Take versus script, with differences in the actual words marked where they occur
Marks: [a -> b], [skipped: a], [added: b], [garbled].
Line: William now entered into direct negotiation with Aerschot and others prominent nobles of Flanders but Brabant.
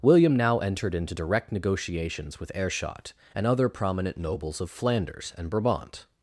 William now entered into direct [negotiation -> negotiations] with Aerschot and [others -> other] prominent nobles of Flanders [but -> and] Brabant.